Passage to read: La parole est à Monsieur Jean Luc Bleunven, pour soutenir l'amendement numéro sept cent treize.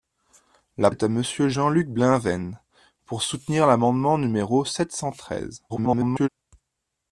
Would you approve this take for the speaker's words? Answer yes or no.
no